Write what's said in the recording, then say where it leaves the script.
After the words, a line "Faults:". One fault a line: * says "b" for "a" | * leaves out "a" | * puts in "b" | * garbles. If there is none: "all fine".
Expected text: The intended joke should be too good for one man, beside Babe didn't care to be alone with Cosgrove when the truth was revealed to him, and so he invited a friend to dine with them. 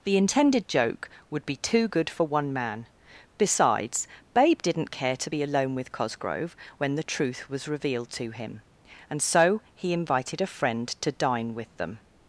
The intended joke would be too good for one man, besides Babe didn't care to be alone with Cosgrove when the truth was revealed to him, and so he invited a friend to dine with them.
Faults:
* says "would" for "should"
* says "besides" for "beside"